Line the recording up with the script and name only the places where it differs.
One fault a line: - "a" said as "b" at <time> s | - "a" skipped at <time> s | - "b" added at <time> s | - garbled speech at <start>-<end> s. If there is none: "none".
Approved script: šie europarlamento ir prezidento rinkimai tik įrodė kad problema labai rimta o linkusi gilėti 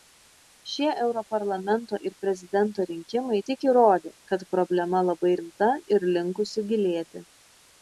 - "o" said as "ir" at 6.0 s